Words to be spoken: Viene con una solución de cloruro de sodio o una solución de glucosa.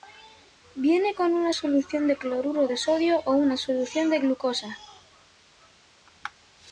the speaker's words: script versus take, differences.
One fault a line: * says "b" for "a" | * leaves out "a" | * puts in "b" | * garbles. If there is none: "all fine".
all fine